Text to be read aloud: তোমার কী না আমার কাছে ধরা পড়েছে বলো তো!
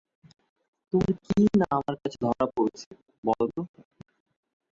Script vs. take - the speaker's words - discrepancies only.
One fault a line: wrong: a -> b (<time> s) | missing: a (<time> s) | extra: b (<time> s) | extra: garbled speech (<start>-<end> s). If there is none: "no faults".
no faults